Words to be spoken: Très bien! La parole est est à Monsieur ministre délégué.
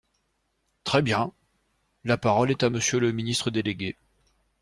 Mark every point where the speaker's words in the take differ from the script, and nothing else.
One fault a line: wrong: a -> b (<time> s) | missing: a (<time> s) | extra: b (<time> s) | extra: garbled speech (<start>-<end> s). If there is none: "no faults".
missing: est (2.6 s)
extra: le (3.0 s)